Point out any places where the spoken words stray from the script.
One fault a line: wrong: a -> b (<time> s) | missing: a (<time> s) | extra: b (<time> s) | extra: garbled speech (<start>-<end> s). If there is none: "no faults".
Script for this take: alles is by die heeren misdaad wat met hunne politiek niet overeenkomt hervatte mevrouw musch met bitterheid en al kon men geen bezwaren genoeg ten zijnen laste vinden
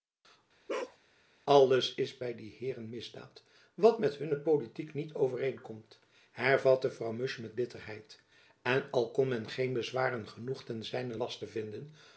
no faults